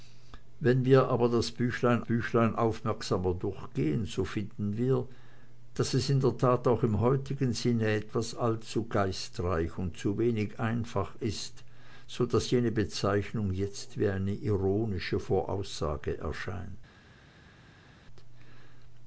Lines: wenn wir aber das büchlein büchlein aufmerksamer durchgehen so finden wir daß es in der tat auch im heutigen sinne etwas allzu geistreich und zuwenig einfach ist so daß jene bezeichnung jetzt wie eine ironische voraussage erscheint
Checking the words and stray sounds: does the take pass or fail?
pass